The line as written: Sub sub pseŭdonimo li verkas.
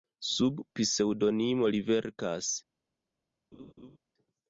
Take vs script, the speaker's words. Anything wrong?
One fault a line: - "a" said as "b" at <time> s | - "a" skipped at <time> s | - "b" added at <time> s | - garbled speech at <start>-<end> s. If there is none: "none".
- "sub" skipped at 0.6 s